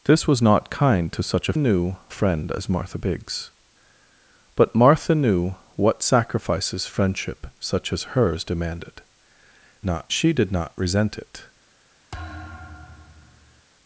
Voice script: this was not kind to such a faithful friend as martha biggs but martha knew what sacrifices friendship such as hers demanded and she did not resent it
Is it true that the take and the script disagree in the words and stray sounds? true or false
true